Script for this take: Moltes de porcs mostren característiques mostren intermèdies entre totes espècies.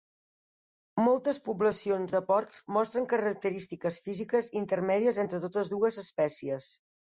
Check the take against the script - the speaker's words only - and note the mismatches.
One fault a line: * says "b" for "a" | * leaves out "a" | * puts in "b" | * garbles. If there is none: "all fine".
* puts in "poblacions"
* says "físiques" for "mostren"
* puts in "dues"